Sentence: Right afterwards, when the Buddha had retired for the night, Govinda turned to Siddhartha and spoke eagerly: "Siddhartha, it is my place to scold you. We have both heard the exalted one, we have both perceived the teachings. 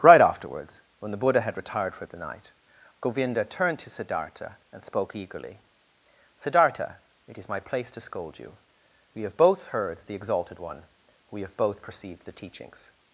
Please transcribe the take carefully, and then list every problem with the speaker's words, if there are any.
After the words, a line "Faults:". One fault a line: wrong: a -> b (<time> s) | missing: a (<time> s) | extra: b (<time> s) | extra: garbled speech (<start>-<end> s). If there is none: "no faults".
Right afterwards, when the Buddha had retired for the night, Govinda turned to Siddhartha and spoke eagerly: "Siddhartha, it is my place to scold you. We have both heard the exalted one, we have both perceived the teachings.
Faults:
no faults